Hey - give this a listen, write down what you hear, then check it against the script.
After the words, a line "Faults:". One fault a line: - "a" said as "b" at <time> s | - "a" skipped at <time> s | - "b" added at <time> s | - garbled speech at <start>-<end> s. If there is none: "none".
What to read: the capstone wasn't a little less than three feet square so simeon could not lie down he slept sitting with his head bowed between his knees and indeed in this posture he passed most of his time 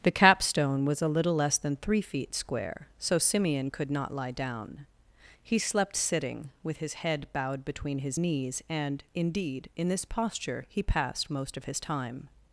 the capstone was a little less than three feet square so simeon could not lie down he slept sitting with his head bowed between his knees and indeed in this posture he passed most of his time
Faults:
- "wasn't" said as "was" at 0.8 s